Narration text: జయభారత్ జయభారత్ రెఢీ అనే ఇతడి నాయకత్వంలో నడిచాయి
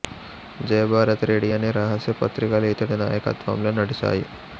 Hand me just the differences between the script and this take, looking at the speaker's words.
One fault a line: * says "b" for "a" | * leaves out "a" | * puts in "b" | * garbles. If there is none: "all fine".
* leaves out "జయభారత్"
* puts in "రహస్య పత్రికలు"